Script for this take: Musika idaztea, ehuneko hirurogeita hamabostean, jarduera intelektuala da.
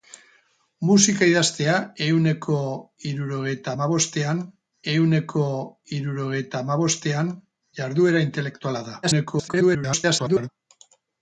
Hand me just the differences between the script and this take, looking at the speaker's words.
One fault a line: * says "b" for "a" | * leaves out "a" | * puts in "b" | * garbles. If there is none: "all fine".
* puts in "ehuneko hirurogeita hamabostean"
* garbles